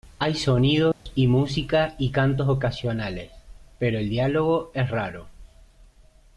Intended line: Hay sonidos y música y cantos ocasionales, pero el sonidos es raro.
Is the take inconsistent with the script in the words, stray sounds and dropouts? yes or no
yes